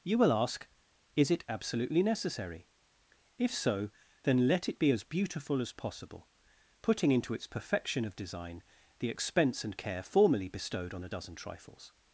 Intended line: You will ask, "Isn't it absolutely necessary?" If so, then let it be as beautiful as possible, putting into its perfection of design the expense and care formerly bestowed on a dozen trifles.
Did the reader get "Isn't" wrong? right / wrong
wrong